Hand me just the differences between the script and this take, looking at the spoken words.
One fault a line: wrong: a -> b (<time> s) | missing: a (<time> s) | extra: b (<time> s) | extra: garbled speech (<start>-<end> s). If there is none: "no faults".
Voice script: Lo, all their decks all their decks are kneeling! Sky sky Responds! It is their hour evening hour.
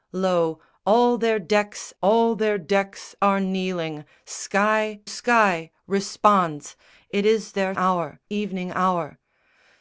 no faults